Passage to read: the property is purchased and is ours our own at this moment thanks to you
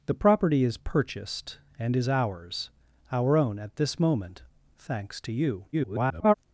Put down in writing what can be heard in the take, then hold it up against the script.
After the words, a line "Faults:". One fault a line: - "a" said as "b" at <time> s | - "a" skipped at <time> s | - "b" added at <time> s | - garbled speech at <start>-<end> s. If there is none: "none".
the property is purchased and is ours our own at this moment thanks to you [garbled]
Faults:
- garbled speech at 5.7-6.3 s